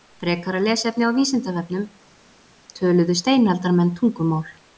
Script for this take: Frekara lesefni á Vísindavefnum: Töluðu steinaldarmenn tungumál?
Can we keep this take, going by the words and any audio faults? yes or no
yes